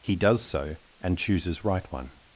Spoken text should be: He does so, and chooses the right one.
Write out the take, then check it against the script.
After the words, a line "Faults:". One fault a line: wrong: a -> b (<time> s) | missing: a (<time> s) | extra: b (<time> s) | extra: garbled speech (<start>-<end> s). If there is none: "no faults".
He does so, and chooses right one.
Faults:
missing: the (1.6 s)